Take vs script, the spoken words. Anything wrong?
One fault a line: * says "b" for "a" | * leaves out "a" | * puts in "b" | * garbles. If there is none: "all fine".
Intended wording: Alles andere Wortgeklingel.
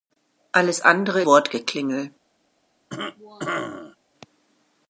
all fine